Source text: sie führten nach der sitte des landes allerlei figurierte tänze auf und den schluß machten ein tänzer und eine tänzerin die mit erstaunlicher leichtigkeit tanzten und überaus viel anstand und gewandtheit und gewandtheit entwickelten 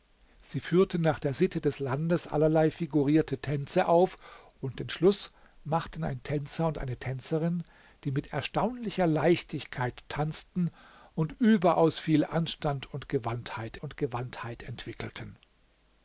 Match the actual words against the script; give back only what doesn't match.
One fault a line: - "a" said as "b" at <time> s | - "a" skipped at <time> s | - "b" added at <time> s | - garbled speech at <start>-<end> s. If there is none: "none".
none